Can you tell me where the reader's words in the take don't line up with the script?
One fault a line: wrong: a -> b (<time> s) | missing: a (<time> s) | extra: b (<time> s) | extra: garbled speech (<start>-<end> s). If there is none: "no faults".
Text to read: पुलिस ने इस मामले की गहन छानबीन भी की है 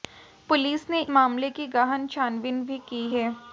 missing: इस (1.0 s)